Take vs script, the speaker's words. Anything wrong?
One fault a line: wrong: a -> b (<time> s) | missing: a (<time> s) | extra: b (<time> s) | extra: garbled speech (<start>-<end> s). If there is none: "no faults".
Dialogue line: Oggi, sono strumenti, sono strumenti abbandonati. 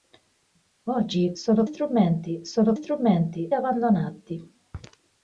no faults